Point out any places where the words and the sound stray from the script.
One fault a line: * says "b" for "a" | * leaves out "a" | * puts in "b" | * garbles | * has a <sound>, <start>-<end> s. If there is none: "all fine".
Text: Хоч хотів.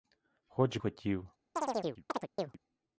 * has a chirp, 1.6-2.6 s